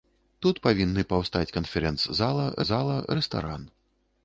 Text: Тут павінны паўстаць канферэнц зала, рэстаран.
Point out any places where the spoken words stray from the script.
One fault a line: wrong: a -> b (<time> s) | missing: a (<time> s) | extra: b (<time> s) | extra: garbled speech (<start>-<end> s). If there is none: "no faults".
extra: зала (2.7 s)